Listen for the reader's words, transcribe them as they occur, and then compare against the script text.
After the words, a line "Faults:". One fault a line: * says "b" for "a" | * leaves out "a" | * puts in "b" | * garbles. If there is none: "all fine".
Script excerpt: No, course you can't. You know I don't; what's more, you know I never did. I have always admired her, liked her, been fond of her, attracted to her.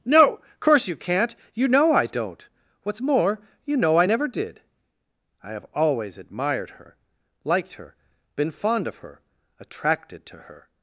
No, course you can't. You know I don't; what's more, you know I never did. I have always admired her, liked her, been fond of her, attracted to her.
Faults:
all fine